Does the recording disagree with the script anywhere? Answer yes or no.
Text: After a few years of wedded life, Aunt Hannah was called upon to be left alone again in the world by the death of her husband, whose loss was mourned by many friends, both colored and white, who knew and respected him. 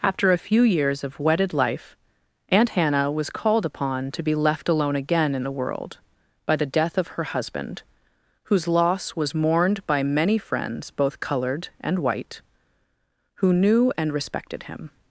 no